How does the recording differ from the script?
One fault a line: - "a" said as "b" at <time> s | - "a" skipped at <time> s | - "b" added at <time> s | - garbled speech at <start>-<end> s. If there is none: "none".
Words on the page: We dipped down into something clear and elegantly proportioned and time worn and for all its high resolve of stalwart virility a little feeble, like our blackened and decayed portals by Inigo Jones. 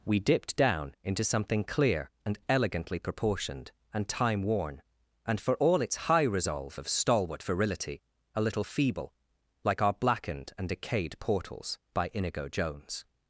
none